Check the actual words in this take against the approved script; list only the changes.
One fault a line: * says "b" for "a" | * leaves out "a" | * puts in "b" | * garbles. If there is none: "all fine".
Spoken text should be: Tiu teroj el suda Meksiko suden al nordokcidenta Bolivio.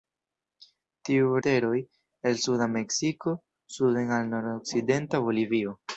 all fine